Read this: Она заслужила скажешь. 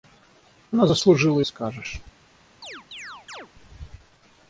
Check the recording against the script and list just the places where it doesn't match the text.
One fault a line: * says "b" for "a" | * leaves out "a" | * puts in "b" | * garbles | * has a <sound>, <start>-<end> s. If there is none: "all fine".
* has a chirp, 2.6-3.5 s